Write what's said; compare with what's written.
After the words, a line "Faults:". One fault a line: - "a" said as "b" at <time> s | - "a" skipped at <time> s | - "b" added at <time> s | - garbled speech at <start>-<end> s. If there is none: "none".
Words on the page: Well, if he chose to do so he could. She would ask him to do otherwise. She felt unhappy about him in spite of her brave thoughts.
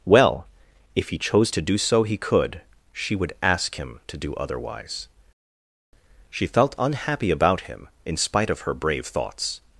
Well, if he chose to do so he could. She would ask him to do otherwise. She felt unhappy about him in spite of her brave thoughts.
Faults:
none